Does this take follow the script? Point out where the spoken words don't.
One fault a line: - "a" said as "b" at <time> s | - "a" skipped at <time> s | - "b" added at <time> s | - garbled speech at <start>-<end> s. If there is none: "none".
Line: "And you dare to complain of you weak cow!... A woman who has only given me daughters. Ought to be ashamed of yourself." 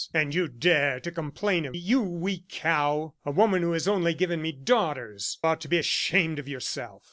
none